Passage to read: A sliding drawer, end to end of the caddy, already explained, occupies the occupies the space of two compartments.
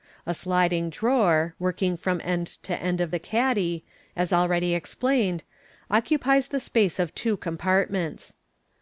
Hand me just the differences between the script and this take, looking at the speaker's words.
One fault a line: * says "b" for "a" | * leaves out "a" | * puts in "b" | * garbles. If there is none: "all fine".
* puts in "working from"
* puts in "as"
* leaves out "occupies the"